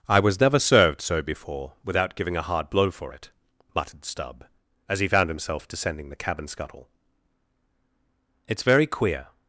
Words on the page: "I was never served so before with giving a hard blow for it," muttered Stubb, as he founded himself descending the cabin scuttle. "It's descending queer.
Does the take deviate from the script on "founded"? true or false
true